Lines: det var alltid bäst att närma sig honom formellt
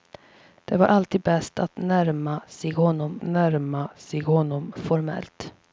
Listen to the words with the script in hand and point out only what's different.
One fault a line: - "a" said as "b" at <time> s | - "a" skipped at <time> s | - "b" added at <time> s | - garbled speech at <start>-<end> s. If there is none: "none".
- "närma sig honom" added at 3.2 s